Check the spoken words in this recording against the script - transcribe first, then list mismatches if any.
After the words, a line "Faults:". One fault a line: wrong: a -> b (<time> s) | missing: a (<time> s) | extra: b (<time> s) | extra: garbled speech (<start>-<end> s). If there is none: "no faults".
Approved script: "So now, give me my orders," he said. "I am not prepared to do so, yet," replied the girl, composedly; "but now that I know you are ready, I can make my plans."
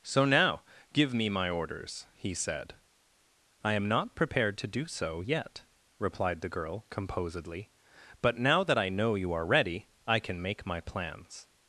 "So now, give me my orders," he said. "I am not prepared to do so, yet," replied the girl, composedly; "but now that I know you are ready, I can make my plans."
Faults:
no faults